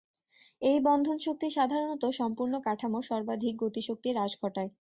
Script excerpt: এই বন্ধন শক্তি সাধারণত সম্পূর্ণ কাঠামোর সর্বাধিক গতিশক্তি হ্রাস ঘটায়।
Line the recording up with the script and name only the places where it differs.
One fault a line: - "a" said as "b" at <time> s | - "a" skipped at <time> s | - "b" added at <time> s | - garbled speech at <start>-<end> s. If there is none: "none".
none